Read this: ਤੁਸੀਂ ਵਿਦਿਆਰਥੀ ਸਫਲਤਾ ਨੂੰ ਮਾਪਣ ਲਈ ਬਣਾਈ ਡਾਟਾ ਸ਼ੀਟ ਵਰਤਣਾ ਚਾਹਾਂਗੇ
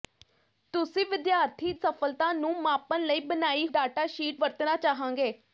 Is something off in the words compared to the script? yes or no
no